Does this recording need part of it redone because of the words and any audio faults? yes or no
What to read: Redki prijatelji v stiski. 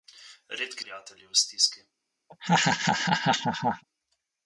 yes